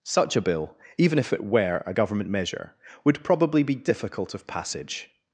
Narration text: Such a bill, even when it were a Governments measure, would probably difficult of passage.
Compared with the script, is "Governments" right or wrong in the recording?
wrong